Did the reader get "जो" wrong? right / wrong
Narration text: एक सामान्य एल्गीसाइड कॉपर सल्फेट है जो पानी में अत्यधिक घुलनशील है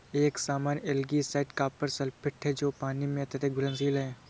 right